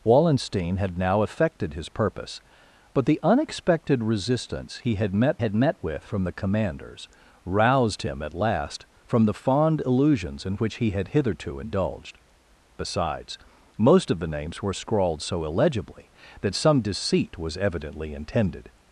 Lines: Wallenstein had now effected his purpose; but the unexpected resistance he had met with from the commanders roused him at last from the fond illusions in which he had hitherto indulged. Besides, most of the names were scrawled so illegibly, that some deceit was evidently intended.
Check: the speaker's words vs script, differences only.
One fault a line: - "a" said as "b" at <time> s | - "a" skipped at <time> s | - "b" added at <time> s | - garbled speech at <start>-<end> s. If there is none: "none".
- "had met" added at 5.4 s